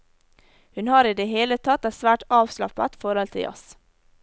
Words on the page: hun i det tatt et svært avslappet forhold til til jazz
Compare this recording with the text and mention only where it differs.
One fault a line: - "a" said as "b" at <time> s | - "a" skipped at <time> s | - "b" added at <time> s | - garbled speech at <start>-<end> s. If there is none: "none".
- "har" added at 0.9 s
- "hele" added at 1.3 s
- "til" skipped at 3.5 s